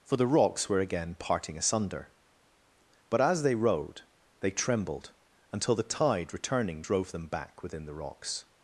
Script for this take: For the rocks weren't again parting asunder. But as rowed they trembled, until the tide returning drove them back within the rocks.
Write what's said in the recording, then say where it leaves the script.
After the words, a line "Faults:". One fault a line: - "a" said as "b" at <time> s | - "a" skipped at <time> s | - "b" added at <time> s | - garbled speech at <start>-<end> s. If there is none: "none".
For the rocks were again parting asunder. But as they rowed they trembled, until the tide returning drove them back within the rocks.
Faults:
- "weren't" said as "were" at 0.7 s
- "they" added at 3.4 s